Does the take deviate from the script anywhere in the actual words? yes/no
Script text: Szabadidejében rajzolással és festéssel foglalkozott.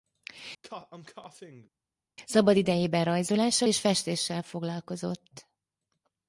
no